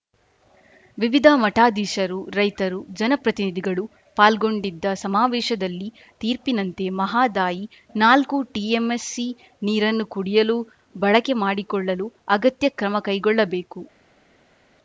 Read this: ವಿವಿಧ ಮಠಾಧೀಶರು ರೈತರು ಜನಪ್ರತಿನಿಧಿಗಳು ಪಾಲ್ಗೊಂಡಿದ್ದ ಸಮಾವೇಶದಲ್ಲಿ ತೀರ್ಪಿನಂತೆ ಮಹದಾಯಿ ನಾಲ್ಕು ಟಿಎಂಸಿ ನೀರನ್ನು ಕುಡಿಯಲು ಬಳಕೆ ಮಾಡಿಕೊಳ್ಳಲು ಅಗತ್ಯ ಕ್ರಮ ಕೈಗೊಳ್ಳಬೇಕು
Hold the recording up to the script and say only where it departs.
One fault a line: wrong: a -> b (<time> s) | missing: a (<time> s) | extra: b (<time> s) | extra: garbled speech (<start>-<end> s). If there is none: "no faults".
no faults